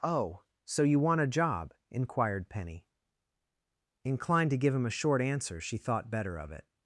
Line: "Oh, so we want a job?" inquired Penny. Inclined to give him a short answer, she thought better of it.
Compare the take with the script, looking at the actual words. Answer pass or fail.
fail